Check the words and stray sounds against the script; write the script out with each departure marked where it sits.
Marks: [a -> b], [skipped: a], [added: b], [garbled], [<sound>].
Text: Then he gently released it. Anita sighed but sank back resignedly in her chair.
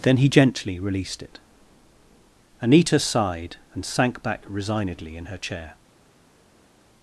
Then he gently released it. Anita sighed [but -> and] sank back resignedly in her chair.